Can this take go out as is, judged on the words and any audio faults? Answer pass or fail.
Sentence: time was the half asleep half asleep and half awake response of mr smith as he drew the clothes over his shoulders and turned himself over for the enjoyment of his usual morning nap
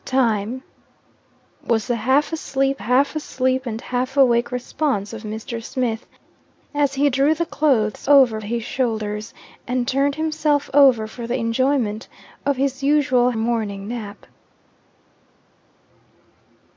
pass